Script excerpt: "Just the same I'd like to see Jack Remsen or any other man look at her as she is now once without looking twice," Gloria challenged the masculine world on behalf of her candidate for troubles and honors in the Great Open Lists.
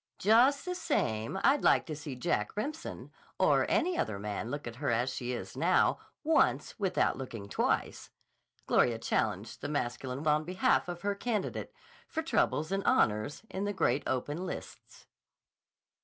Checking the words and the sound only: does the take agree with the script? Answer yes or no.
no